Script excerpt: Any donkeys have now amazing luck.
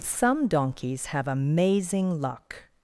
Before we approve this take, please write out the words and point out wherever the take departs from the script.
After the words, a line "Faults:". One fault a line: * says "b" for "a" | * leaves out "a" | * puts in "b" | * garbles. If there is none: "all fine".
Some donkeys have amazing luck.
Faults:
* says "Some" for "Any"
* leaves out "now"